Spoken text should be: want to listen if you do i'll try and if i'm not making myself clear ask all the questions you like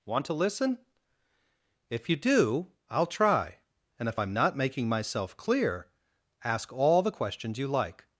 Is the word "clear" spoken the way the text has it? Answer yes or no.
yes